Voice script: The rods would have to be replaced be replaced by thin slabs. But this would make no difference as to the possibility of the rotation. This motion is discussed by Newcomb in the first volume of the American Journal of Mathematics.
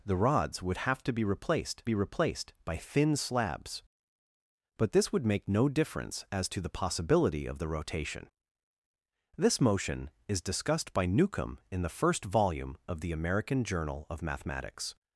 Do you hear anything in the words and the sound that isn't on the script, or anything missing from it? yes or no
no